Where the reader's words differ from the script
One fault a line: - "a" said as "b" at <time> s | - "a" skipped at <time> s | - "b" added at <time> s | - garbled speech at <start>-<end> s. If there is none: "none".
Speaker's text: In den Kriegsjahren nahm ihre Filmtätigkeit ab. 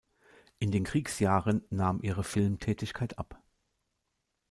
none